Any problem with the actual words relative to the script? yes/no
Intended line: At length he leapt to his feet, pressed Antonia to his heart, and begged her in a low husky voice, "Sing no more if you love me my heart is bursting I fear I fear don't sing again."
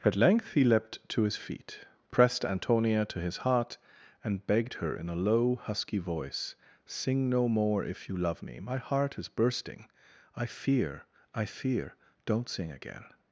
no